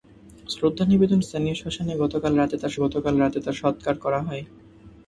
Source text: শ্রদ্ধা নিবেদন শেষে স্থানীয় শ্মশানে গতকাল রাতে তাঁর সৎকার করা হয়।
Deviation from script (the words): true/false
true